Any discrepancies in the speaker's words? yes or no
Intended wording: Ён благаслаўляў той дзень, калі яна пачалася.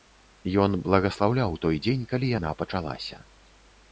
no